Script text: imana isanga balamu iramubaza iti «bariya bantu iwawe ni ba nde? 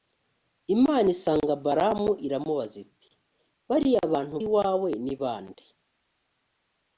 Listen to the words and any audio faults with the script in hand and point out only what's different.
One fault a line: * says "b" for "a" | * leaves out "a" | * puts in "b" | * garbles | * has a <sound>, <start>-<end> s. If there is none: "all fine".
all fine